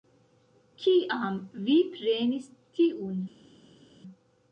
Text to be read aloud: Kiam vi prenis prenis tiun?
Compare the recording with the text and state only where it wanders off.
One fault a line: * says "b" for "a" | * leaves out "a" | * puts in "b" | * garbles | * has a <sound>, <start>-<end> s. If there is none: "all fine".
* leaves out "prenis"